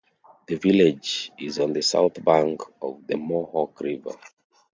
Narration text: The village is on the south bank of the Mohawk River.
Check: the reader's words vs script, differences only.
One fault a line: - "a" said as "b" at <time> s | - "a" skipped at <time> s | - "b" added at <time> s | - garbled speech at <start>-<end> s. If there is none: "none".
none